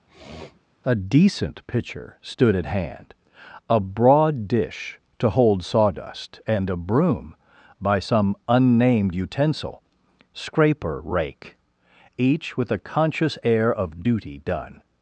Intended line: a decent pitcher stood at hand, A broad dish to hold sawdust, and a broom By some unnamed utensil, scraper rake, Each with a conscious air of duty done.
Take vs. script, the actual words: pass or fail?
pass